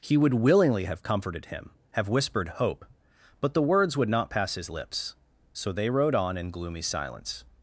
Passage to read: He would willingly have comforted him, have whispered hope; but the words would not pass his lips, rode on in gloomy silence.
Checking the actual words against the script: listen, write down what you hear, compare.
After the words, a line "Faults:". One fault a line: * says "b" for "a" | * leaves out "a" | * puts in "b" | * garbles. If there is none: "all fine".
He would willingly have comforted him, have whispered hope; but the words would not pass his lips, so they rode on in gloomy silence.
Faults:
* puts in "so they"